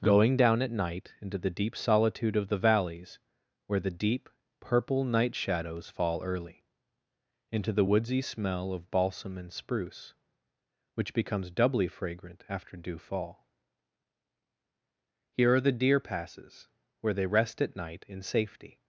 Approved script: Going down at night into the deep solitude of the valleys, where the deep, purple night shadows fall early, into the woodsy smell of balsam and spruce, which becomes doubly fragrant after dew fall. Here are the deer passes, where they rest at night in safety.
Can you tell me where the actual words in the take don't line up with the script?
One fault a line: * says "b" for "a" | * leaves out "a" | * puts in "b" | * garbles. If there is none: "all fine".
all fine